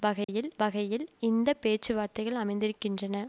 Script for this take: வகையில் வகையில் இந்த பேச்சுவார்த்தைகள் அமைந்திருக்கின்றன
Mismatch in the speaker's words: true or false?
false